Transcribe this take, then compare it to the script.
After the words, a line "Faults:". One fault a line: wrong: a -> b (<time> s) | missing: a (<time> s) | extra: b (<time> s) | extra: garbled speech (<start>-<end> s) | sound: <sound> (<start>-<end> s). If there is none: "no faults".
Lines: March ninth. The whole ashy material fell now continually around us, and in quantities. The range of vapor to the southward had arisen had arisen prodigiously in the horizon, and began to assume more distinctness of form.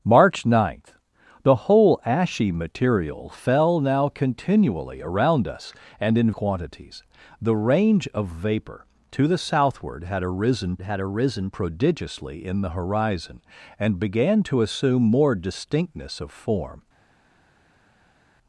March ninth. The whole ashy material fell now continually around us, and in quantities. The range of vapor to the southward had arisen had arisen prodigiously in the horizon, and began to assume more distinctness of form.
Faults:
no faults